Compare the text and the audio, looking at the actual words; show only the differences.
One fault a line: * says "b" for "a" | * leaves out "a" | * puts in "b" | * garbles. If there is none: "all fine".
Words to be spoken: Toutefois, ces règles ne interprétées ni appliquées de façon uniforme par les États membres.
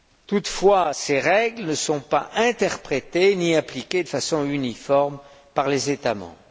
* puts in "sont pas"